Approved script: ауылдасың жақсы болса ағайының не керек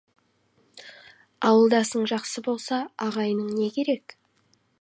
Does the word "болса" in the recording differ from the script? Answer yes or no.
no